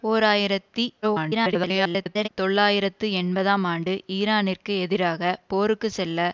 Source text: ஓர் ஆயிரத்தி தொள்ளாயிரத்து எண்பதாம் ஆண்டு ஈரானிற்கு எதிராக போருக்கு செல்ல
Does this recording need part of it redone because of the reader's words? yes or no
yes